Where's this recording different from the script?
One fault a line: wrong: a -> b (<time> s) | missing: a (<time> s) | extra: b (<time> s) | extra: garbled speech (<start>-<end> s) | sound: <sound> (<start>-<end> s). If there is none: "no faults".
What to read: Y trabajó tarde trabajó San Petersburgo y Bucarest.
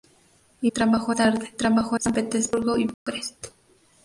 sound: dropout (2.9-3.1 s)